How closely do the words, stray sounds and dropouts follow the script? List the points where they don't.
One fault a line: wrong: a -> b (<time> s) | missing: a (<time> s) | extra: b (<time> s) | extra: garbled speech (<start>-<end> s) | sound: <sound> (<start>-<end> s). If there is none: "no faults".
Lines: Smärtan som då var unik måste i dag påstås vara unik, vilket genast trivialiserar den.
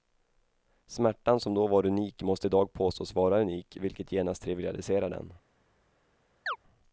sound: chirp (6.5-6.6 s)